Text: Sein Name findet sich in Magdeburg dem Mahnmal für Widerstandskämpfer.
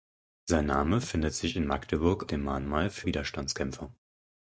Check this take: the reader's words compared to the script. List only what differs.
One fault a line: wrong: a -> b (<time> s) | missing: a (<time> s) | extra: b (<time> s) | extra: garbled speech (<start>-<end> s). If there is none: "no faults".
no faults